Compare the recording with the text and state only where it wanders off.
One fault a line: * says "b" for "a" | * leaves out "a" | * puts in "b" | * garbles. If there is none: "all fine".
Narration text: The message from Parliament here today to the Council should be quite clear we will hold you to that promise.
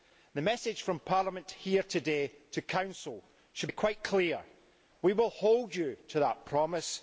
all fine